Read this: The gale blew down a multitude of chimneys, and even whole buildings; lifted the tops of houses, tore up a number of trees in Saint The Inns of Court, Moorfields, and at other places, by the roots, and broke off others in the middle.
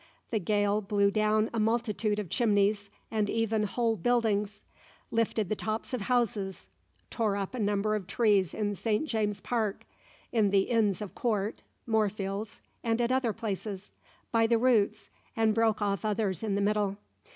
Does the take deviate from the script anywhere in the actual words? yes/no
yes